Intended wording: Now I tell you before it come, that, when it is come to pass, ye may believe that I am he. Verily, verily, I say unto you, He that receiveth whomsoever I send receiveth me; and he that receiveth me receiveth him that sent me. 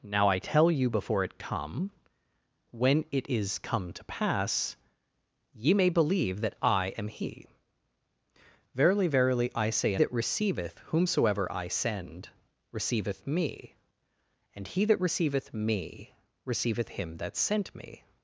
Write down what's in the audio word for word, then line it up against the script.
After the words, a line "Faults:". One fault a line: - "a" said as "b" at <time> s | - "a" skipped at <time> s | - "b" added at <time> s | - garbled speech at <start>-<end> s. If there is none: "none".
Now I tell you before it come, when it is come to pass, ye may believe that I am he. Verily, verily, I say that receiveth whomsoever I send receiveth me; and he that receiveth me receiveth him that sent me.
Faults:
- "that" skipped at 1.9 s
- "unto you He" skipped at 10.0 s